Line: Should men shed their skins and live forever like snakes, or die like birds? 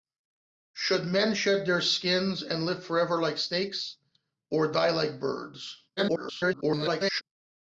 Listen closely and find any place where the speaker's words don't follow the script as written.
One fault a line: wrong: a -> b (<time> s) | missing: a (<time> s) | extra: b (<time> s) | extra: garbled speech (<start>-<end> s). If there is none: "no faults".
extra: garbled speech (6.0-7.2 s)